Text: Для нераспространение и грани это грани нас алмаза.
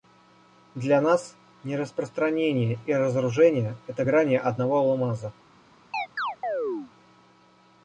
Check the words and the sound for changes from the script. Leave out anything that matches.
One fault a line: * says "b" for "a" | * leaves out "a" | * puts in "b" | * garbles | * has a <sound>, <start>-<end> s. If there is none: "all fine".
* puts in "нас"
* says "разоружение" for "грани"
* says "одного" for "нас"
* has a chirp, 5.9-6.9 s